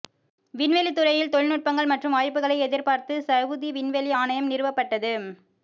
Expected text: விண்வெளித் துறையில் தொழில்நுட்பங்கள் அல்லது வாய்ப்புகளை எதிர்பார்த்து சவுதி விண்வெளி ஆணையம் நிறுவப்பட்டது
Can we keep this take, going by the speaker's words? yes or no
no